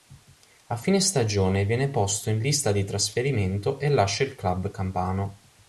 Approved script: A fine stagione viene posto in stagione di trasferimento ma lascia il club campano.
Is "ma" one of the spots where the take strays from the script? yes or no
yes